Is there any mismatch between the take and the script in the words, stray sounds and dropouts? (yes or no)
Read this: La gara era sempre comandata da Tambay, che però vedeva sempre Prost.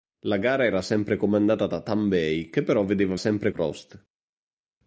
no